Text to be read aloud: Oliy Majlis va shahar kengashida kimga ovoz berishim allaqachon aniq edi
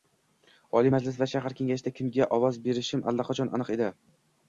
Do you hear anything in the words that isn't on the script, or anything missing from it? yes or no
no